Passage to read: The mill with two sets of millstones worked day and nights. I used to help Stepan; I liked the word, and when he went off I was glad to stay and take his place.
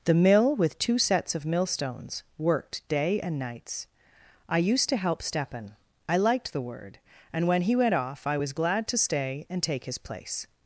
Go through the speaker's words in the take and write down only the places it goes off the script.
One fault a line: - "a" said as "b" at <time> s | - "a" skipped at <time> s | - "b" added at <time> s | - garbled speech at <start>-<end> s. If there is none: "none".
none